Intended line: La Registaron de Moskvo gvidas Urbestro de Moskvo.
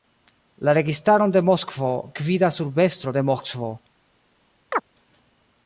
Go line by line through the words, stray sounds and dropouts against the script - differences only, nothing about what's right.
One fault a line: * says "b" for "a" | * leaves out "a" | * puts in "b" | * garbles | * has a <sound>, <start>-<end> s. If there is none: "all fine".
* has a chirp, 4.7-4.8 s